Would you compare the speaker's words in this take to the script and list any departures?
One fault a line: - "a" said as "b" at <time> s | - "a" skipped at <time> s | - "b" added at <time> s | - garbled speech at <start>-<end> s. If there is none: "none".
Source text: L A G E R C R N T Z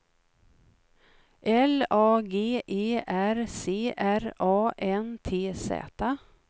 - "A" added at 4.4 s